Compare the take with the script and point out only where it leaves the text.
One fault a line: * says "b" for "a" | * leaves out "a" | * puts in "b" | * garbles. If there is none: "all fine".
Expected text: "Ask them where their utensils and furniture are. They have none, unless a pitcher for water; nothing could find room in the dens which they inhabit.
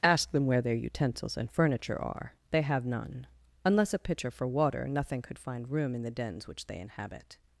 all fine